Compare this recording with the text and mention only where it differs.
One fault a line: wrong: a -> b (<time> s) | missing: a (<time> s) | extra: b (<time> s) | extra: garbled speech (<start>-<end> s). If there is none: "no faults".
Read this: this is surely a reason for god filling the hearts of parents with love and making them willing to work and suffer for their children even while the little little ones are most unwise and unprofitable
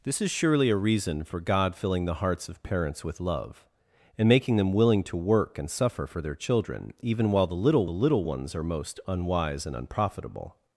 no faults